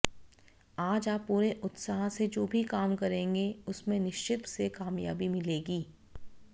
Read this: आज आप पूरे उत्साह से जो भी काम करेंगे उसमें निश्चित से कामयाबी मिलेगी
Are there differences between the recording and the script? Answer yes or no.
no